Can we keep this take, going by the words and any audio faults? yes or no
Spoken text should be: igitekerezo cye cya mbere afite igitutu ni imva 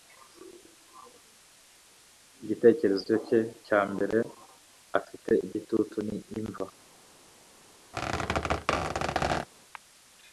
no